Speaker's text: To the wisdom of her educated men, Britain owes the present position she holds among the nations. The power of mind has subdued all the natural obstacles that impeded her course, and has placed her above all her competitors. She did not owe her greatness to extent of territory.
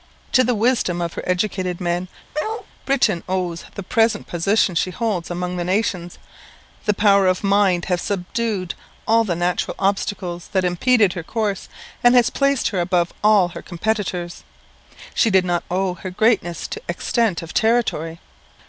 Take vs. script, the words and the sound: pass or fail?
fail